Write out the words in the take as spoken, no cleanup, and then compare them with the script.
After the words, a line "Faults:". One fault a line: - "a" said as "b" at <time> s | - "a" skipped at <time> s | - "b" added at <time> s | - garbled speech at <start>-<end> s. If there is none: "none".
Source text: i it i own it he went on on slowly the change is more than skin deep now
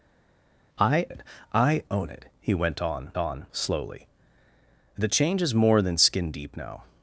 i it i own it he went on on slowly the change is more than skin deep now
Faults:
none